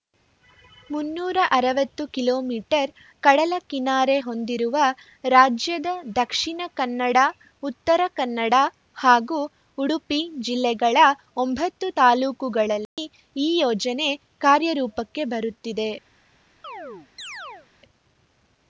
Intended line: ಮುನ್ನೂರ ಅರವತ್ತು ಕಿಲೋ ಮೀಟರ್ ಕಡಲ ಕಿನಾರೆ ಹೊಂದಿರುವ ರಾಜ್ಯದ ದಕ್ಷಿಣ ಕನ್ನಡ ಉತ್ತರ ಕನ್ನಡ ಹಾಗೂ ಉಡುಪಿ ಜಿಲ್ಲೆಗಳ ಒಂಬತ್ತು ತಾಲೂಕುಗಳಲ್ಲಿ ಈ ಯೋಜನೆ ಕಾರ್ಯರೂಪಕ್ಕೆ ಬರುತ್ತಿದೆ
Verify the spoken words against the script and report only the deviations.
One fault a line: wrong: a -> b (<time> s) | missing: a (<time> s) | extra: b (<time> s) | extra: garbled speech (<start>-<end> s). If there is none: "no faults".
no faults